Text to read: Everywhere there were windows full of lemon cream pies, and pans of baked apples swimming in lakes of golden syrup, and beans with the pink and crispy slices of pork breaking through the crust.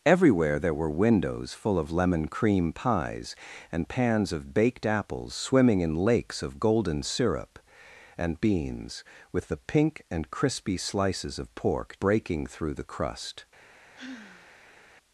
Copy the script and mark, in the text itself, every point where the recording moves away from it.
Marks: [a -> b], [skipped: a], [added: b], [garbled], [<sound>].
Everywhere there were windows full of lemon cream pies, and pans of baked apples swimming in lakes of golden syrup, and beans with the pink and crispy slices of pork breaking through the crust. [sigh]